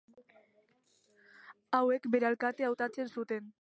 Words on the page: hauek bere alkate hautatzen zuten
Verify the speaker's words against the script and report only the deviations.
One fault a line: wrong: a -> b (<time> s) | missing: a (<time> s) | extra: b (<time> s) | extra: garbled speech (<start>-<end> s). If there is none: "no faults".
no faults